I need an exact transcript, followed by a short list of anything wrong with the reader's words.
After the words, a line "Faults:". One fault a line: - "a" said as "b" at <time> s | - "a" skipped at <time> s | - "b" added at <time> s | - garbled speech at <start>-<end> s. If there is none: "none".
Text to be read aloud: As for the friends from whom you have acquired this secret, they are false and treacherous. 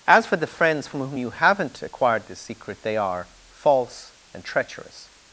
As for the friends from whom you haven't acquired this secret, they are false and treacherous.
Faults:
- "have" said as "haven't" at 1.3 s